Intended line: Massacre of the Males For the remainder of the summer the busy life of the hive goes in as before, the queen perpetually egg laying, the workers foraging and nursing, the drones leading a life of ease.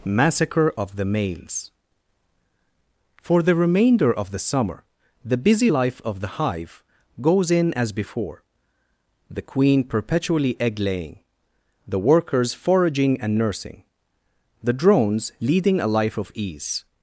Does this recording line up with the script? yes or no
yes